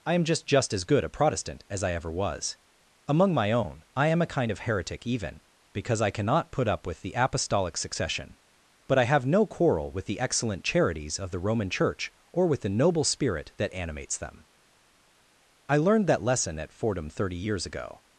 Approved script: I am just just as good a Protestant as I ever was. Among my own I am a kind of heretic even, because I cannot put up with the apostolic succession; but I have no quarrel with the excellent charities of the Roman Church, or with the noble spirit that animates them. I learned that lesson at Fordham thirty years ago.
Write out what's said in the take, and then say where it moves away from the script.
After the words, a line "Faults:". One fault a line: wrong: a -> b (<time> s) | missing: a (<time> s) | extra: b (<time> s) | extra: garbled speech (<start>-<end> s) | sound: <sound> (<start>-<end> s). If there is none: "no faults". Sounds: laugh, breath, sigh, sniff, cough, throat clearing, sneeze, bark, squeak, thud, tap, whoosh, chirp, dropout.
I am just just as good a Protestant as I ever was. Among my own I am a kind of heretic even, because I cannot put up with the apostolic succession; but I have no quarrel with the excellent charities of the Roman Church, or with the noble spirit that animates them. I learned that lesson at Fordham thirty years ago.
Faults:
no faults